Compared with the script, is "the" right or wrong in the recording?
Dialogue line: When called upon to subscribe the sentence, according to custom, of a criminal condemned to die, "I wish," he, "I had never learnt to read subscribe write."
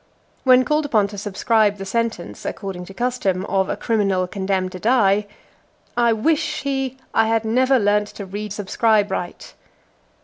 right